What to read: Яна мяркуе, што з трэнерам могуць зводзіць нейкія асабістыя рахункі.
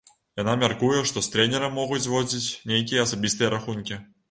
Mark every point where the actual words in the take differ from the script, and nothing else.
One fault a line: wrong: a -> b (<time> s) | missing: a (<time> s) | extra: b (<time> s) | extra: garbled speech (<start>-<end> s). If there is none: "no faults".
no faults